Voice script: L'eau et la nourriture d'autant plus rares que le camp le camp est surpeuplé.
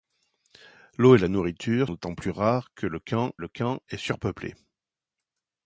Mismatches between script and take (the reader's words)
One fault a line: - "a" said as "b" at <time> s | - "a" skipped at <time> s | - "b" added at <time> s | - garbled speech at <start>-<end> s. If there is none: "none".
none